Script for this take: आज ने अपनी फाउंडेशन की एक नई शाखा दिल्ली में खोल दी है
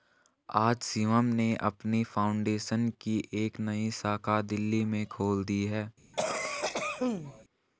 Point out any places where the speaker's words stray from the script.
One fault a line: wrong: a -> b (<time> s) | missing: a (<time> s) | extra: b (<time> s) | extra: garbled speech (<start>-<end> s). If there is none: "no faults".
extra: शिवम (0.8 s)